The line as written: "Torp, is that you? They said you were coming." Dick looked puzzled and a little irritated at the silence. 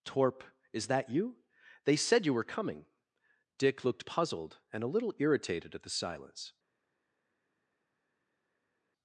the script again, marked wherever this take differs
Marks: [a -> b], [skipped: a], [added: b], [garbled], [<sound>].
"Torp, is that you? They said you were coming." Dick looked puzzled and a little irritated at the silence.